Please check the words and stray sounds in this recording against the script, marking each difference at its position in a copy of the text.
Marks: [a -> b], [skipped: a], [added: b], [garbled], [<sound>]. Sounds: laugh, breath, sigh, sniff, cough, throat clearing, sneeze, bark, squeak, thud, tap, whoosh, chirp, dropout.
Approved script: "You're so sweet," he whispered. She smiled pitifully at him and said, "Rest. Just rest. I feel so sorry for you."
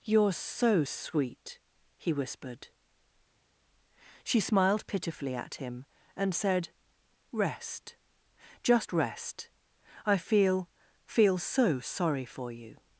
"You're so sweet," he whispered. She smiled pitifully at him and said, "Rest. Just rest. I feel [added: feel] so sorry for you."